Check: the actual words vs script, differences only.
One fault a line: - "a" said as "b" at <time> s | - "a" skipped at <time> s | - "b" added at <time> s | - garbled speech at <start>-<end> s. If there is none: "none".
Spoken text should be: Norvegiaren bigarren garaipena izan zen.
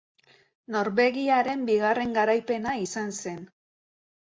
none